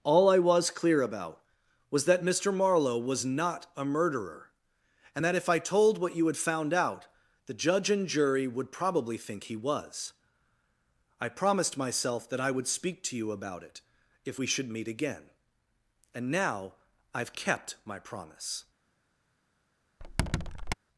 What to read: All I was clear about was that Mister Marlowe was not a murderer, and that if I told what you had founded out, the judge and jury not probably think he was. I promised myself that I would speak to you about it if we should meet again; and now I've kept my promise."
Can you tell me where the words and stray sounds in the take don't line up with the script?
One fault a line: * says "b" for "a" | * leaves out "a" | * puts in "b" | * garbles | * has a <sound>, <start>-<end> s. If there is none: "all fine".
* says "found" for "founded"
* says "would" for "not"
* has a squeak, 20.0-20.7 s